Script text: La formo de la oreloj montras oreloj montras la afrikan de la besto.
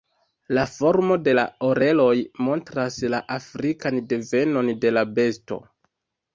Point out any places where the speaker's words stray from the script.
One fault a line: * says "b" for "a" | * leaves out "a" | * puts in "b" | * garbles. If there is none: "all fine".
* leaves out "oreloj montras"
* puts in "devenon"